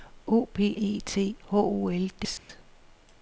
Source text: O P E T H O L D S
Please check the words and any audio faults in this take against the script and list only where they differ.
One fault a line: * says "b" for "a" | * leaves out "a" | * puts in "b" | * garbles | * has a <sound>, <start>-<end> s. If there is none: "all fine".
* has a dropout, 2.4-2.5 s